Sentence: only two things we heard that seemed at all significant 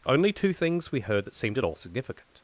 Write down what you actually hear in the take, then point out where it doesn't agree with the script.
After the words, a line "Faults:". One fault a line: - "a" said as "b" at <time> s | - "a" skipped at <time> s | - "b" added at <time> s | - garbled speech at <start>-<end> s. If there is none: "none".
only two things we heard that seemed at all significant
Faults:
none